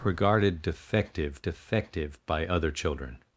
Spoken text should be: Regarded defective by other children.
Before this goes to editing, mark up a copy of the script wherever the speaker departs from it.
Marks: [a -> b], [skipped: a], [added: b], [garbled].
Regarded defective [added: defective] by other children.